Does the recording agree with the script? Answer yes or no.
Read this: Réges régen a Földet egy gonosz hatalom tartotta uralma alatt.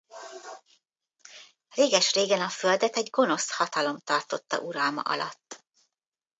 yes